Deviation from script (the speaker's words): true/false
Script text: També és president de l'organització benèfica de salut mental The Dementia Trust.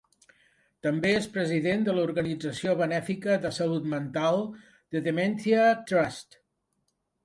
false